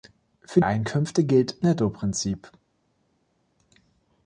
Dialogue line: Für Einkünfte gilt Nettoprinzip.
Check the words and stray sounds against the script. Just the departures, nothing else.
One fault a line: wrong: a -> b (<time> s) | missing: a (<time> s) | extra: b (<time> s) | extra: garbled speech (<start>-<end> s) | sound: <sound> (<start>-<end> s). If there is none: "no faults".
no faults